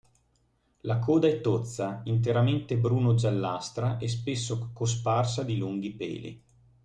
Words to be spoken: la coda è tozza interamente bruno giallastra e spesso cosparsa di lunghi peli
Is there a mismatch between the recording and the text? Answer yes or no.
no